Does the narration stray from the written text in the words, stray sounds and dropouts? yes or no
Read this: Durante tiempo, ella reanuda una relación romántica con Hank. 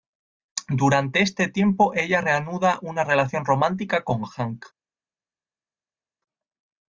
yes